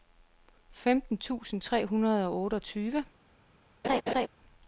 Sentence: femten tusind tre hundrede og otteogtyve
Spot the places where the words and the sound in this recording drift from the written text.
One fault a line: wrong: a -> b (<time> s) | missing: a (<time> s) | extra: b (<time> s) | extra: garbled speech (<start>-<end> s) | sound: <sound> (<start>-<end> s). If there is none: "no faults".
sound: laugh (3.8-4.3 s)